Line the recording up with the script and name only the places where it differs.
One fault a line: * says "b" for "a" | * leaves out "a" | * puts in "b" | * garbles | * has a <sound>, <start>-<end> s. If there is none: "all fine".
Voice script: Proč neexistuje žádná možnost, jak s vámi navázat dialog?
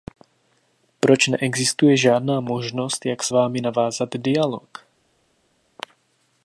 all fine